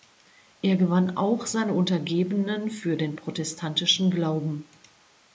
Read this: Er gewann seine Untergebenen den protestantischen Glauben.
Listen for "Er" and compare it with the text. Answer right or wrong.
right